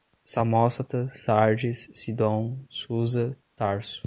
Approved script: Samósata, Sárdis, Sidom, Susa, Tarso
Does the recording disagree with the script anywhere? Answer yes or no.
no